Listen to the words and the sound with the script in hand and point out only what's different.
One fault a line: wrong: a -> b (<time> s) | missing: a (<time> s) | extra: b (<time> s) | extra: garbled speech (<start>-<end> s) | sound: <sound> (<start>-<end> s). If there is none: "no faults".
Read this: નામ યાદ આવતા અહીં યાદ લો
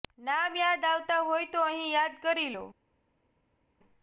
extra: હોય તો (1.2 s)
extra: કરી (2.2 s)